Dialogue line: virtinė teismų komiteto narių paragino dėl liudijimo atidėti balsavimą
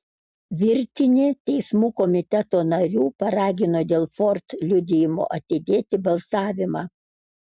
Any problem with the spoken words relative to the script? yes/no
yes